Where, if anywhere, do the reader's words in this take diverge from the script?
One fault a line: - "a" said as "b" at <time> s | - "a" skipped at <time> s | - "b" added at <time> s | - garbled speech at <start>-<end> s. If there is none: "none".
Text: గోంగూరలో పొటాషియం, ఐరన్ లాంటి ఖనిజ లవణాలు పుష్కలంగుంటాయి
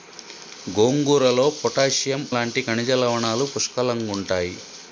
- "ఐరన్" skipped at 2.2 s